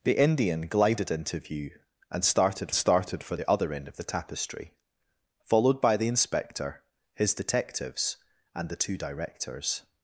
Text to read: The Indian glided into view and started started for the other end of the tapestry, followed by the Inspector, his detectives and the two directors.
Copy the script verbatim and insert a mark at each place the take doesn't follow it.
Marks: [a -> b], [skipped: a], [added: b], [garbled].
The Indian glided into view and started started for the other end of the tapestry, followed by the Inspector, his detectives and the two directors.